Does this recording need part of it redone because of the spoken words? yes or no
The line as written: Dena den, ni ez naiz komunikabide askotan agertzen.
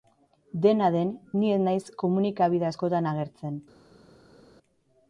no